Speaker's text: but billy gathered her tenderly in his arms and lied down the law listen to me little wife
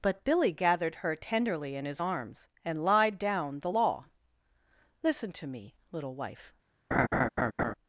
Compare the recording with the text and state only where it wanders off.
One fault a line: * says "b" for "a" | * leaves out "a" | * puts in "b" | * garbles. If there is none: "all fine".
all fine